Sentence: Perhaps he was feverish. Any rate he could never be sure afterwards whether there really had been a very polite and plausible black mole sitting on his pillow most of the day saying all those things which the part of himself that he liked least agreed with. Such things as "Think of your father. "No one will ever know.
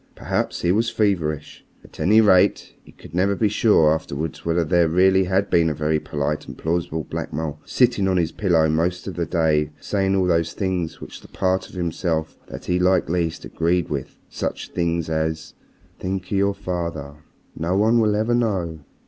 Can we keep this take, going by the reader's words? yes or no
no